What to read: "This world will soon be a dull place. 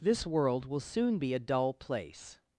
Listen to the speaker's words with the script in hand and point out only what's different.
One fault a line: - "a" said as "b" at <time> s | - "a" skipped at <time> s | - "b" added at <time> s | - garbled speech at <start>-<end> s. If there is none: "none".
none